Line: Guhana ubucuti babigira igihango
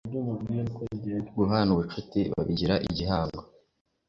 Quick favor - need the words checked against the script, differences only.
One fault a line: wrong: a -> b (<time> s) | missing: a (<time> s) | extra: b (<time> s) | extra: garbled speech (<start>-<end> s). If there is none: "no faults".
no faults